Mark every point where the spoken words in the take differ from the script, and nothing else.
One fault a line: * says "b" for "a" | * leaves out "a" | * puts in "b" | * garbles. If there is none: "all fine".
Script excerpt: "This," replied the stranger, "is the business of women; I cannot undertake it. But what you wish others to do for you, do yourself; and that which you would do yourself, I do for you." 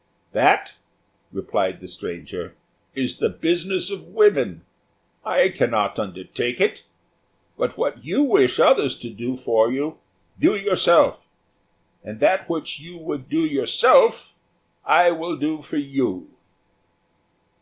* says "That" for "This"
* puts in "will"